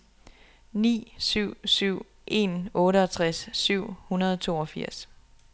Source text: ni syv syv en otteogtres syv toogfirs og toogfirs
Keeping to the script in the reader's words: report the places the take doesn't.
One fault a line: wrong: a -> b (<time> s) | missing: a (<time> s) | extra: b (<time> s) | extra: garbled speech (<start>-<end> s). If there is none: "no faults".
wrong: toogfirs -> hundrede (4.1 s)